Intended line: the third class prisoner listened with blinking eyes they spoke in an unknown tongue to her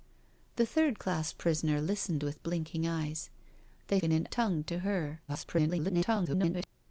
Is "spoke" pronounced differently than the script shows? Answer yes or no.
yes